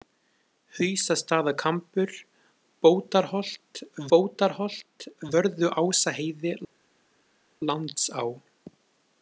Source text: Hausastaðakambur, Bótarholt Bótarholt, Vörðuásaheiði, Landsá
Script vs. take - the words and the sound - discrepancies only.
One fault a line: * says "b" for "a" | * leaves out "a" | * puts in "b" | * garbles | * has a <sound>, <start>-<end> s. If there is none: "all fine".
all fine